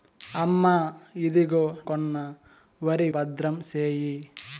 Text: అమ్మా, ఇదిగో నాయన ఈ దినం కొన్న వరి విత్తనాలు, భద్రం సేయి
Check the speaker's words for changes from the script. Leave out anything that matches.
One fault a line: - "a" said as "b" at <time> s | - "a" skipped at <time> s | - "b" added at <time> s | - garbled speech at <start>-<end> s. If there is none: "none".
- "నాయన ఈ దినం" skipped at 1.6 s
- "విత్తనాలు" skipped at 3.1 s